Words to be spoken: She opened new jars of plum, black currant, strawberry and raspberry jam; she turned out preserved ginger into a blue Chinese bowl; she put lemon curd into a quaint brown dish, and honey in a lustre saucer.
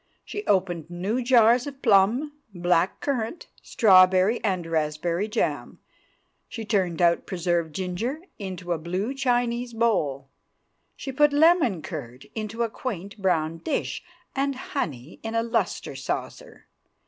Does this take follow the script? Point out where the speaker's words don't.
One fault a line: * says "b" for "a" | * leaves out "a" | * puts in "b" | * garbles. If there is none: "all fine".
all fine